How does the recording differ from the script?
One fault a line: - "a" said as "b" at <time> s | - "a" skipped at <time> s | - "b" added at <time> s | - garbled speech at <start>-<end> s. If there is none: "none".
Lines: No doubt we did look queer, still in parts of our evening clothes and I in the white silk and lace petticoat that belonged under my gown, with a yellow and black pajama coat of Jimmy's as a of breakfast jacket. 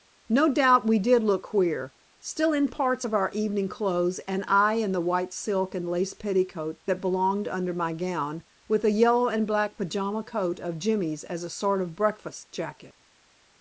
- "sort" added at 11.5 s